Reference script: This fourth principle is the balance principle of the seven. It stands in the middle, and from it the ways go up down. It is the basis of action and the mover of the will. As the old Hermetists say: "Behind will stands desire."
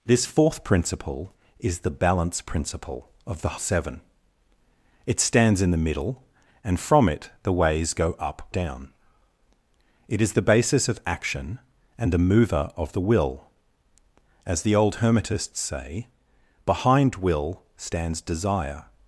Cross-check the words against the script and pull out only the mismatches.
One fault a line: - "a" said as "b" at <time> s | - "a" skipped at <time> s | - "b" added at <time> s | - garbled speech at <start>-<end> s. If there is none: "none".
none